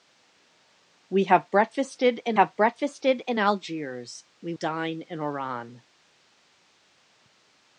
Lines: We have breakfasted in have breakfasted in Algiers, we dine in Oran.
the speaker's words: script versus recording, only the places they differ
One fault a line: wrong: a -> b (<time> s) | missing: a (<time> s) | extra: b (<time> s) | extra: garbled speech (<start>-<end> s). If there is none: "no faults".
no faults